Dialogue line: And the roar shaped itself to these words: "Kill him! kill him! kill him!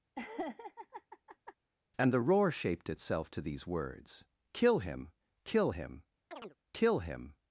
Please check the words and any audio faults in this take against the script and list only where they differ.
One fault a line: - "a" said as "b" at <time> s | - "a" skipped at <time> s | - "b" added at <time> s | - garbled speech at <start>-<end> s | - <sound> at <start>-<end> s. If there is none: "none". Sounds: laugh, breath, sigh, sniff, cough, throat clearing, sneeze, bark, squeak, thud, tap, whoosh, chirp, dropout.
- laugh at 0.1-1.5 s
- chirp at 6.3-6.6 s